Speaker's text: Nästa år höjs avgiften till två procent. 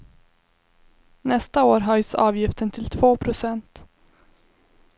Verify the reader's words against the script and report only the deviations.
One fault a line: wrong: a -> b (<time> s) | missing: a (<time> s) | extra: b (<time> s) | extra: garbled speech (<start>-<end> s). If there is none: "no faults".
no faults